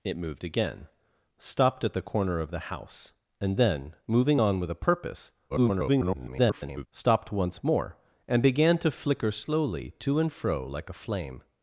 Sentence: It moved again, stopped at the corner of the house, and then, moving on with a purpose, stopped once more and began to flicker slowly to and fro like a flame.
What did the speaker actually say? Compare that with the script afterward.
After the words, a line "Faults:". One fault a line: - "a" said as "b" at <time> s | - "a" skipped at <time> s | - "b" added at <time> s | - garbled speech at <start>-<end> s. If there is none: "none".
It moved again, stopped at the corner of the house, and then, moving on with a purpose, [garbled] stopped once more and began to flicker slowly to and fro like a flame.
Faults:
- garbled speech at 5.5-6.9 s